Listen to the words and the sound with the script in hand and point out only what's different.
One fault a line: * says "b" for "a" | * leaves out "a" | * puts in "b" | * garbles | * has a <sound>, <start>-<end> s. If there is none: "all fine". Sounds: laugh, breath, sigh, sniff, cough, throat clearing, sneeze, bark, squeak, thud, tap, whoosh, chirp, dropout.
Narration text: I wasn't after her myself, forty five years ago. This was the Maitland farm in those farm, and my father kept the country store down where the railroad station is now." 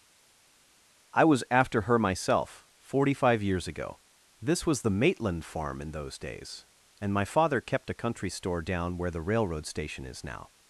* says "was" for "wasn't"
* says "days" for "farm"
* says "a" for "the"